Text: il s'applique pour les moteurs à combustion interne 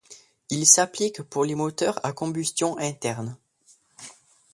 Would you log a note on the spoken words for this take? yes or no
no